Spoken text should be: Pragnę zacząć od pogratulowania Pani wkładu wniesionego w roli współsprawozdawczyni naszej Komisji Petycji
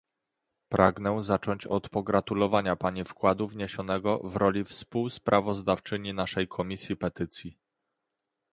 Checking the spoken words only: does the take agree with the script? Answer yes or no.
yes